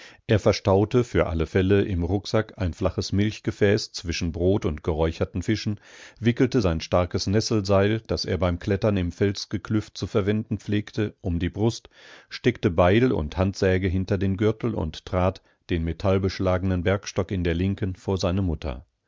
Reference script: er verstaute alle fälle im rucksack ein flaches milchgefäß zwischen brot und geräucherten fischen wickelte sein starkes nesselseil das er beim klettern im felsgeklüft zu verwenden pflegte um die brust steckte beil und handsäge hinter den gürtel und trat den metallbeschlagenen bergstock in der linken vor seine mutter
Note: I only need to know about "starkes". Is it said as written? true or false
true